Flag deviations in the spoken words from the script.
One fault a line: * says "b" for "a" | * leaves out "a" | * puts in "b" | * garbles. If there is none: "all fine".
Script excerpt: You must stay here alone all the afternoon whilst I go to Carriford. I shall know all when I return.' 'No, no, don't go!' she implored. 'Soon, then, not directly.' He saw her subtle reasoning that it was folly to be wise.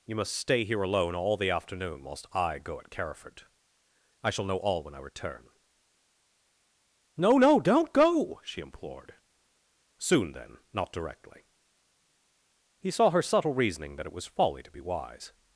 * says "at" for "to"